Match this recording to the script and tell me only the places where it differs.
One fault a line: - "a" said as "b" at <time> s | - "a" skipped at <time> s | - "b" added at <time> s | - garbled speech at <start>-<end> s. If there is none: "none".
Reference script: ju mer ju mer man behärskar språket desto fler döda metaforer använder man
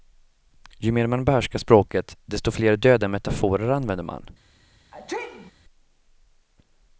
- "ju mer" skipped at 1.1 s